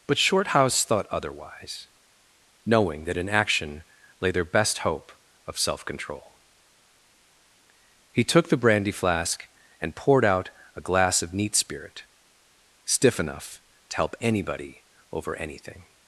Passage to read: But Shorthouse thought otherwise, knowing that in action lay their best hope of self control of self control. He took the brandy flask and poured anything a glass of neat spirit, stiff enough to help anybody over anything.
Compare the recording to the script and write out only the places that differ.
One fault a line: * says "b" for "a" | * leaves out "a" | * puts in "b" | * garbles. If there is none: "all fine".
* leaves out "of self control"
* says "out" for "anything"